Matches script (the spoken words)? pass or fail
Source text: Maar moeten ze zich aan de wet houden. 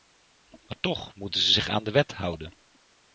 fail